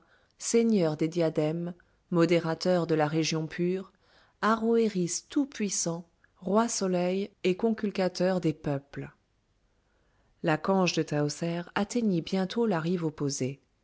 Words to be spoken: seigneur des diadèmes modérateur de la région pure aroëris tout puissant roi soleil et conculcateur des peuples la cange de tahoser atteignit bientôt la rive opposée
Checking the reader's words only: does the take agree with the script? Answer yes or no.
yes